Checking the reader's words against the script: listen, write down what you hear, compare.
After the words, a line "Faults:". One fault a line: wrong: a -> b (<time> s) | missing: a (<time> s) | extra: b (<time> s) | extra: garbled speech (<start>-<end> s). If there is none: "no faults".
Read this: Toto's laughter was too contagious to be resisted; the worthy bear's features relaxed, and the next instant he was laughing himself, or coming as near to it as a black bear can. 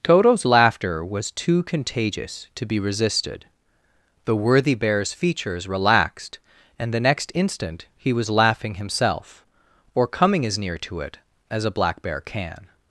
Toto's laughter was too contagious to be resisted; the worthy bear's features relaxed, and the next instant he was laughing himself, or coming as near to it as a black bear can.
Faults:
no faults